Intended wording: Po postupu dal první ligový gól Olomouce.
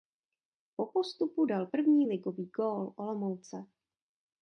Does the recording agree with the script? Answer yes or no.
yes